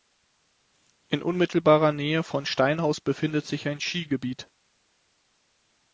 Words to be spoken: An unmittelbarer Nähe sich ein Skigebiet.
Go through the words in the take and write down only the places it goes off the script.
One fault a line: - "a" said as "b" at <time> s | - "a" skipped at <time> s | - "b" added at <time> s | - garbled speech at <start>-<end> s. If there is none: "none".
- "An" said as "In" at 1.1 s
- "von Steinhaus befindet" added at 2.2 s